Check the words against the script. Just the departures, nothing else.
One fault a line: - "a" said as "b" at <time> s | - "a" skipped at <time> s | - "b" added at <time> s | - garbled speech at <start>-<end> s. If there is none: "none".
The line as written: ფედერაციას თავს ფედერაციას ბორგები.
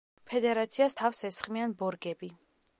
- "ფედერაციას" said as "ესხმიან" at 1.3 s